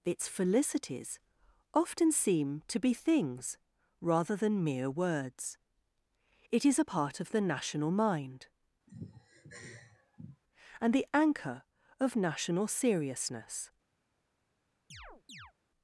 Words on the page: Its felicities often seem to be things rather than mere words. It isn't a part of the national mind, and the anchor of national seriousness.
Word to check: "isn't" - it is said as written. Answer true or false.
false